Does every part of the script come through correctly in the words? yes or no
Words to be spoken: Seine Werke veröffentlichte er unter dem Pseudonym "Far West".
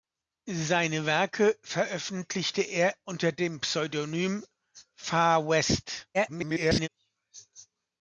no